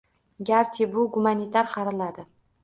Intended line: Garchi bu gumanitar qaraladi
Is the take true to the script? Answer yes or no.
yes